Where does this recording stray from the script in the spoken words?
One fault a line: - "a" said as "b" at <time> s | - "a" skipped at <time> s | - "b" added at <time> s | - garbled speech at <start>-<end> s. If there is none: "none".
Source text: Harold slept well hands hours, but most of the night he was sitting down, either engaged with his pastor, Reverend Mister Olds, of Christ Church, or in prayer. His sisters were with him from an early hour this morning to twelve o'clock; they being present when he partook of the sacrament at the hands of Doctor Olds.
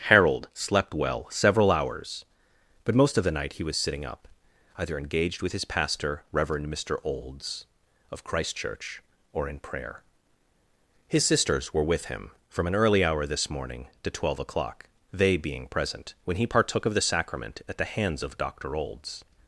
- "hands" said as "several" at 1.3 s
- "down" said as "up" at 4.0 s